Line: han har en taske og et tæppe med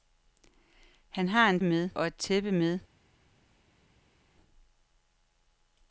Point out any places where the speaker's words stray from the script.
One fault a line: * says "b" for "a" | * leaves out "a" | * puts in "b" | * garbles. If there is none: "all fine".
* says "med" for "taske"